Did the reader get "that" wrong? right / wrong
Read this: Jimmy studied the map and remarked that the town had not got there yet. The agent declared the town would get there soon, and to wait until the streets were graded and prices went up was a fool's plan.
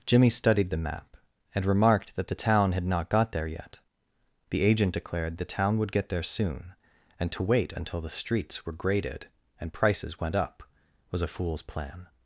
right